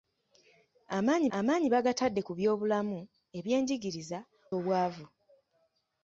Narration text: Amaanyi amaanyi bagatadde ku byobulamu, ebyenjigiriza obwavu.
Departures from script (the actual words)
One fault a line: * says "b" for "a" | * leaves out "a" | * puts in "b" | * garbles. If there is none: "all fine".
all fine